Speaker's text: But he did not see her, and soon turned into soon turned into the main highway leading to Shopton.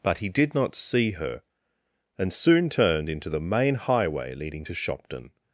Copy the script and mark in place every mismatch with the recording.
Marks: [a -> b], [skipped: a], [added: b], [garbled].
But he did not see her, and soon turned into [skipped: soon turned into] the main highway leading to Shopton.